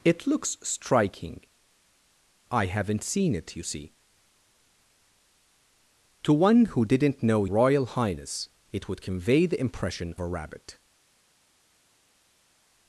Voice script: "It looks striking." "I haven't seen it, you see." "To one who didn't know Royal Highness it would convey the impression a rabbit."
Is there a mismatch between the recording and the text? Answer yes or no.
no